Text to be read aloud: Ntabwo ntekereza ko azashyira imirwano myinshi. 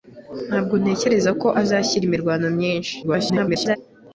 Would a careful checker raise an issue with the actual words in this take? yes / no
yes